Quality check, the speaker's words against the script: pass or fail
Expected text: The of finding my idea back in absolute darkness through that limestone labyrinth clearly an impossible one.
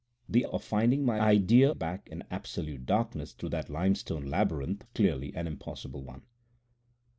pass